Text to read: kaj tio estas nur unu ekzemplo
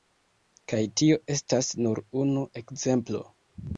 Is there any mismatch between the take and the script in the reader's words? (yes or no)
no